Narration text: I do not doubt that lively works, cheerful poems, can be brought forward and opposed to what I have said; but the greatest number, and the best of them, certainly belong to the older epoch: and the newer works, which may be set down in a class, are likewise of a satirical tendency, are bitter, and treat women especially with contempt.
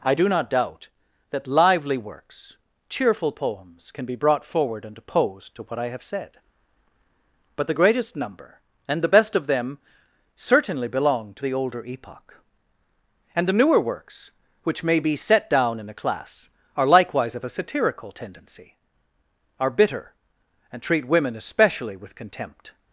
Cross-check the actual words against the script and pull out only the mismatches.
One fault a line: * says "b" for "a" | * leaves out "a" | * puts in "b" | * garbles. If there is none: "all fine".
all fine